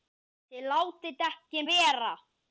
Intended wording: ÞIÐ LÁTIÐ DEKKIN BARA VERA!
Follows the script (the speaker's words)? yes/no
no